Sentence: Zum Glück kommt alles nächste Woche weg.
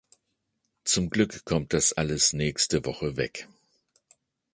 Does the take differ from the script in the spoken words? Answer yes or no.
yes